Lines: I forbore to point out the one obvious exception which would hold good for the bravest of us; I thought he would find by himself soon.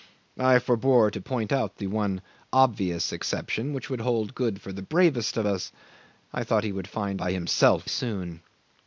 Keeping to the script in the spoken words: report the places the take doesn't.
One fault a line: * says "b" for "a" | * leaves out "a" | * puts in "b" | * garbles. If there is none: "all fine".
all fine